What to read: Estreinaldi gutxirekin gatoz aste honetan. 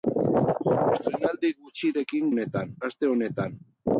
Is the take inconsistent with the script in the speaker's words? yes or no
yes